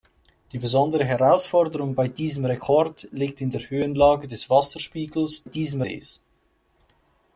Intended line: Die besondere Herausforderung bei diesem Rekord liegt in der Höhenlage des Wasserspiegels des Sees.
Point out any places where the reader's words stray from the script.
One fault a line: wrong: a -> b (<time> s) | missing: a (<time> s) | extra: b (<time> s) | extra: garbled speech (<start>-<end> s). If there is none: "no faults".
wrong: des -> diesem (5.4 s)